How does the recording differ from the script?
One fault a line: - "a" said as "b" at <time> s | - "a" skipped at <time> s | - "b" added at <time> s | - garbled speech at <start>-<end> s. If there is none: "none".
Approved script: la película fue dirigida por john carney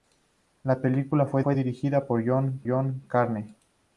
- "fue" added at 1.4 s
- "john" added at 2.7 s